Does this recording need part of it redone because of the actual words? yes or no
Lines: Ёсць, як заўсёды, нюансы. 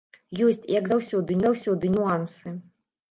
yes